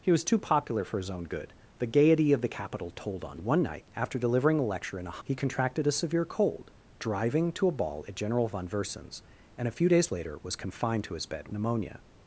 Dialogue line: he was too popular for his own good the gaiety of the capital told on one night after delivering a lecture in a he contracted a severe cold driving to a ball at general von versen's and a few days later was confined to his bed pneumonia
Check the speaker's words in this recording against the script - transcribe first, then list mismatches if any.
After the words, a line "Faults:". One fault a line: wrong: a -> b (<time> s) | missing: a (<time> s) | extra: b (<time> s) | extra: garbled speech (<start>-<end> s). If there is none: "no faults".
he was too popular for his own good the gaiety of the capital told on one night after delivering a lecture in a he contracted a severe cold driving to a ball at general von versen's and a few days later was confined to his bed pneumonia
Faults:
no faults